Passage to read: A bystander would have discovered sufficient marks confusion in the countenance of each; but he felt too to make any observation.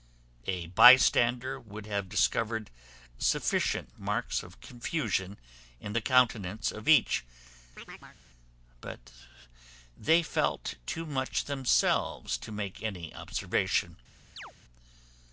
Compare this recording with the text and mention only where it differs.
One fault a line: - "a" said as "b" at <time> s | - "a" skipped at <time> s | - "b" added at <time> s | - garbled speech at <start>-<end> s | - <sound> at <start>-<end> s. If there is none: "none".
- "of" added at 4.4 s
- chirp at 7.8-8.2 s
- "he" said as "they" at 10.0 s
- "much themselves" added at 11.1 s
- chirp at 14.4-14.5 s